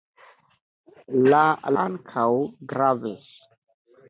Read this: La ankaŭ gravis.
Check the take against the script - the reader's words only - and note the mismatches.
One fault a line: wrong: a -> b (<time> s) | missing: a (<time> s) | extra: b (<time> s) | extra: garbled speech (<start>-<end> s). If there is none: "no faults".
no faults